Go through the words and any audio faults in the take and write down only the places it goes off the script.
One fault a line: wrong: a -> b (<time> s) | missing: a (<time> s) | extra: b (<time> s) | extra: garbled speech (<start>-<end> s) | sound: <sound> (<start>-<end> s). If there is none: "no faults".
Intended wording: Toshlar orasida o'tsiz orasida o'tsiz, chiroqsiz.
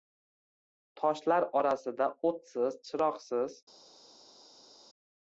missing: orasida o'tsiz (2.8 s)